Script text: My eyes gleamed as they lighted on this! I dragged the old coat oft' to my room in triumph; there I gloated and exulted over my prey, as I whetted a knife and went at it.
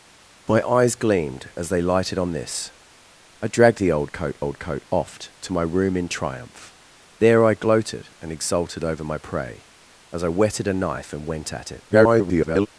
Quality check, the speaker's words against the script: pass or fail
fail